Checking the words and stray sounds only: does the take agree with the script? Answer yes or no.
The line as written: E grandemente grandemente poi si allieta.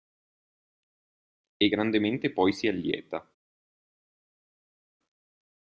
no